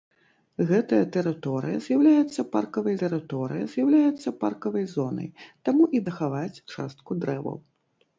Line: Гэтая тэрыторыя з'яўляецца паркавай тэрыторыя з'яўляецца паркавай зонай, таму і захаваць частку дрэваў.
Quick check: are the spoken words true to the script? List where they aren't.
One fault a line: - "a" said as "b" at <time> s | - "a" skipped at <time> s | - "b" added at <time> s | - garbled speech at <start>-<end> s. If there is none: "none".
none